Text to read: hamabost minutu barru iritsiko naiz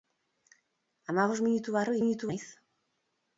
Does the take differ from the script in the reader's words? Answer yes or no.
yes